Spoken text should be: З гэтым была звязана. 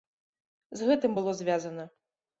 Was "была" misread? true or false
true